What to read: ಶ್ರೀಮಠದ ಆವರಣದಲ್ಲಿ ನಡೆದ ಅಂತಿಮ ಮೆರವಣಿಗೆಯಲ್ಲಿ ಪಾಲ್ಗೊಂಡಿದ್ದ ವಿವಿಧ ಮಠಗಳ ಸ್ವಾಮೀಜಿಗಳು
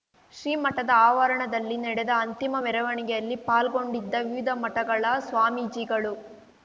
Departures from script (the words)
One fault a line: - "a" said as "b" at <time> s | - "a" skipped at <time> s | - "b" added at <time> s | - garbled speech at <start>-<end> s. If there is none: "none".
none